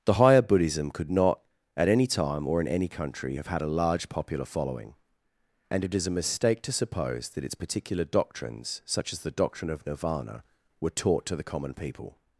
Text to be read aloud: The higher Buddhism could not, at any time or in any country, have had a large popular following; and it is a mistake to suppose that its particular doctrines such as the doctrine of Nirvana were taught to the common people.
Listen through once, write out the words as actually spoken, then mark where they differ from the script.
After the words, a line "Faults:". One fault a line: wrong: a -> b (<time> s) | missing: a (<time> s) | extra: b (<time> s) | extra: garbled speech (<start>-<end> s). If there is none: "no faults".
The higher Buddhism could not, at any time or in any country, have had a large popular following; and it is a mistake to suppose that its particular doctrines such as the doctrine of Nirvana were taught to the common people.
Faults:
no faults